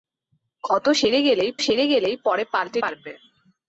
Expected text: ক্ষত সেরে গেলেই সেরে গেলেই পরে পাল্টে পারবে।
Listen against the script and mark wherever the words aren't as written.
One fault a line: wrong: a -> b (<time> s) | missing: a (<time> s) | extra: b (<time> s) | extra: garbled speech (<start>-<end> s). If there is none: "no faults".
no faults